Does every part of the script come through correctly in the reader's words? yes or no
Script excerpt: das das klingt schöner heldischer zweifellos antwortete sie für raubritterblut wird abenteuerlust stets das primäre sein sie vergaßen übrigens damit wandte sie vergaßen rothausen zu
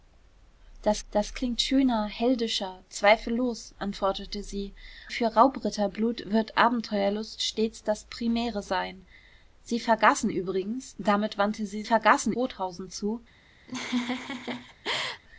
yes